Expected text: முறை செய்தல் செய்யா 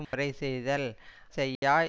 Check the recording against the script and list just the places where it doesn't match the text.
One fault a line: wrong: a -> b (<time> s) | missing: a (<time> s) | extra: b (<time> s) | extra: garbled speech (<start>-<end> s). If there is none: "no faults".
no faults